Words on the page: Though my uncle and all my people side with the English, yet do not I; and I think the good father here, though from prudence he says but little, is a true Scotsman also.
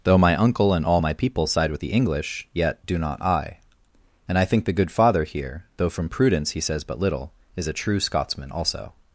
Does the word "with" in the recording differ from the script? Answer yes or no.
no